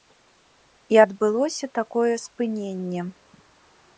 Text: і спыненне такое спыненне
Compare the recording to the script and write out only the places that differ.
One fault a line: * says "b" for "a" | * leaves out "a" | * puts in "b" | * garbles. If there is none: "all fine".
* says "адбылося" for "спыненне"